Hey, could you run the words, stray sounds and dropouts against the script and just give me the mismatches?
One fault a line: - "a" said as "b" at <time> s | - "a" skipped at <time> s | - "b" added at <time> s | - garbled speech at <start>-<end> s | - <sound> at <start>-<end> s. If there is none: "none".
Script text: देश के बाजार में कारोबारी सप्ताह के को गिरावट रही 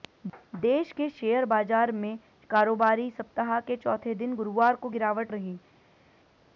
- "शेयर" added at 1.1 s
- "चौथे दिन गुरुवार" added at 3.8 s